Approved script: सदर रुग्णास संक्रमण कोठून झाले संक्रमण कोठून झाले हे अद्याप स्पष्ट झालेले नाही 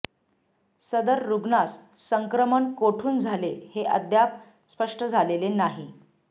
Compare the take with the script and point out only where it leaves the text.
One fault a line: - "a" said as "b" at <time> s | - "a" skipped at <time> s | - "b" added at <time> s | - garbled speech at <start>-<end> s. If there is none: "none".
- "संक्रमण कोठून झाले" skipped at 3.5 s